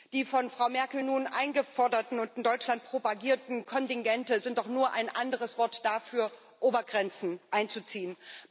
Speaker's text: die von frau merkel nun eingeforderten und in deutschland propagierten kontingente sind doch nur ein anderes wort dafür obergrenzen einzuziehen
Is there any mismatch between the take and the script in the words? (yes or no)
no